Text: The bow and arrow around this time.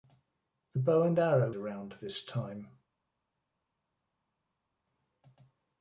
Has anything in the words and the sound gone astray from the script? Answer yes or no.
no